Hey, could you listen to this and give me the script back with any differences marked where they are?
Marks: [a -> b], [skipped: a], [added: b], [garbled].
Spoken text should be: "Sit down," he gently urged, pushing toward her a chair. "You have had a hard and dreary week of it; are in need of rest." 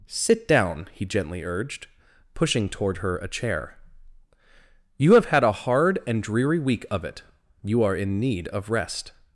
"Sit down," he gently urged, pushing toward her a chair. "You have had a hard and dreary week of it; [added: you] are in need of rest."